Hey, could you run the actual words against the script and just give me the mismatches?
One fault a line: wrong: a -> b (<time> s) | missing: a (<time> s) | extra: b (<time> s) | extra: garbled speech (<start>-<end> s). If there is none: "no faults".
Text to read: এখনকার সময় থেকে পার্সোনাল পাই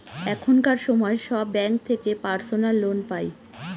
extra: সব ব্যাঙ্ক (1.3 s)
extra: লোন (2.8 s)